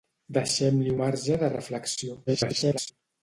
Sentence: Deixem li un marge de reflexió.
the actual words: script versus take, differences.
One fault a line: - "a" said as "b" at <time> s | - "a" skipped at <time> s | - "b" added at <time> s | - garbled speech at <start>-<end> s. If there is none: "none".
- "un" skipped at 0.9 s
- garbled speech at 2.3-2.9 s